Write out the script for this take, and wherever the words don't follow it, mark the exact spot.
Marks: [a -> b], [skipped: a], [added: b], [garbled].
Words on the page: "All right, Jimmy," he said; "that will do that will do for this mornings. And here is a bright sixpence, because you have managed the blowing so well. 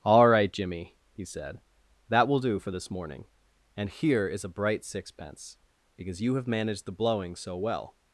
"All right, Jimmy," he said; "that will do [skipped: that will do] for this [mornings. -> morning] And here is a bright sixpence, because you have managed the blowing so well.